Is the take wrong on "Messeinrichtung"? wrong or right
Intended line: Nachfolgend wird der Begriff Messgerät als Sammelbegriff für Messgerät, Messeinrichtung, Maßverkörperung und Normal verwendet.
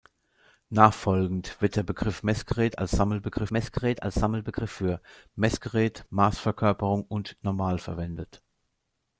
wrong